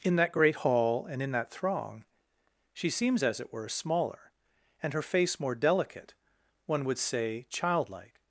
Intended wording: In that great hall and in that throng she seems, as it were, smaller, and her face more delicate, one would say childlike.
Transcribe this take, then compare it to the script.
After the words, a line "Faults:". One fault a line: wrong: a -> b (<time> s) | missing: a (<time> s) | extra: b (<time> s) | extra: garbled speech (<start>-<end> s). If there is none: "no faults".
In that great hall and in that throng she seems, as it were, smaller, and her face more delicate, one would say childlike.
Faults:
no faults